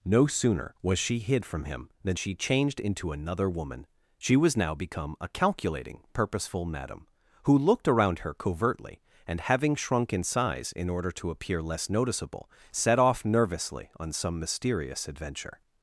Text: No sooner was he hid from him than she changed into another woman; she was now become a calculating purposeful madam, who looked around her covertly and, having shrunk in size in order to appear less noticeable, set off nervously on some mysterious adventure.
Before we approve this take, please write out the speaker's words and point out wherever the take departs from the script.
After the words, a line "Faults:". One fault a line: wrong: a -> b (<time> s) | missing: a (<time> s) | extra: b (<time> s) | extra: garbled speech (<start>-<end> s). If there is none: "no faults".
No sooner was she hid from him than she changed into another woman; she was now become a calculating purposeful madam, who looked around her covertly and, having shrunk in size in order to appear less noticeable, set off nervously on some mysterious adventure.
Faults:
wrong: he -> she (1.0 s)